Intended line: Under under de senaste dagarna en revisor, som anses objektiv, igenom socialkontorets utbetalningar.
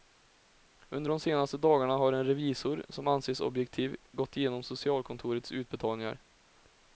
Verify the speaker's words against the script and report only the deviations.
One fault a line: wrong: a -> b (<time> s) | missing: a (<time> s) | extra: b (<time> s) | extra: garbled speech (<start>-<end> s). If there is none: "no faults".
missing: under (1.1 s)
extra: har (1.9 s)
extra: gått (4.1 s)